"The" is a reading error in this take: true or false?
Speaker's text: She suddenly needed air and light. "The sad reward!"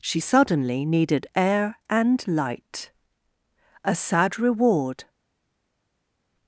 true